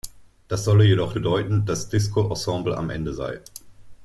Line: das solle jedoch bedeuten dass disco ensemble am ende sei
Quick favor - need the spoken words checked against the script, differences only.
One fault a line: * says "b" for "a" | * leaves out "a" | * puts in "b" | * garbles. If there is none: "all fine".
all fine